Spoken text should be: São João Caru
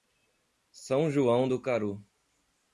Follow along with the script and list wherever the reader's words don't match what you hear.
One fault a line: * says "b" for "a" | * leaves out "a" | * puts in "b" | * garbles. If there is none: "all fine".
* puts in "do"